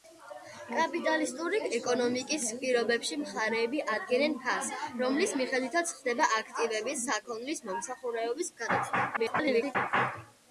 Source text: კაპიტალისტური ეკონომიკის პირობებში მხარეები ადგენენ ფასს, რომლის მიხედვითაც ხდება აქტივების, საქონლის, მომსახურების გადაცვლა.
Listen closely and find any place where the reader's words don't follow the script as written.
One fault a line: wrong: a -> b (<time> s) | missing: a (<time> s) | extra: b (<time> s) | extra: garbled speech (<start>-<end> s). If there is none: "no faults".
extra: garbled speech (9.2-9.8 s)